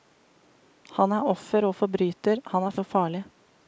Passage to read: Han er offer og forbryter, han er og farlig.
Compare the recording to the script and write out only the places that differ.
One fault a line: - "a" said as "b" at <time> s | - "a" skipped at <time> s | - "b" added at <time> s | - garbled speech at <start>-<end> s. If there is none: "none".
none